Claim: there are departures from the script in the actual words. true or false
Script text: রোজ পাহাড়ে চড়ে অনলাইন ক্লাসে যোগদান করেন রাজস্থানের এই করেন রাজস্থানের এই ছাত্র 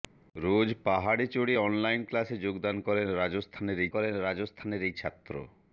false